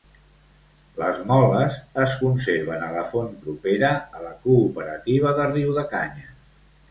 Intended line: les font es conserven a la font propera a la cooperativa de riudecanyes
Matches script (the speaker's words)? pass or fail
fail